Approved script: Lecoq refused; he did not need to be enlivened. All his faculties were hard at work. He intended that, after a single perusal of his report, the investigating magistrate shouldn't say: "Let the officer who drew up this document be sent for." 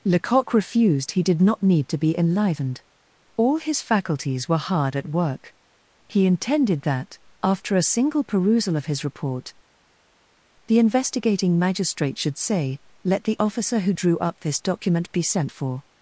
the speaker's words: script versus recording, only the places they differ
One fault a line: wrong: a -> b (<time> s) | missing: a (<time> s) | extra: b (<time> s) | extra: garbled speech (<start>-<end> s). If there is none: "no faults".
wrong: shouldn't -> should (12.2 s)